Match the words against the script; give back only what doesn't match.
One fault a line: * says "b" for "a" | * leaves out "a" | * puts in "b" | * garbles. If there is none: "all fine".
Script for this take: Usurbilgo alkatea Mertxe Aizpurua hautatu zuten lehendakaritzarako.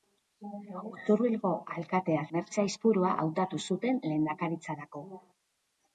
all fine